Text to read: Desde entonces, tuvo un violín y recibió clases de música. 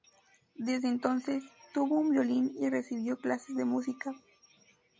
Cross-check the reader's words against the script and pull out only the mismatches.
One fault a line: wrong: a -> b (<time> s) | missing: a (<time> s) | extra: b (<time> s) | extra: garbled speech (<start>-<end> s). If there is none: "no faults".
no faults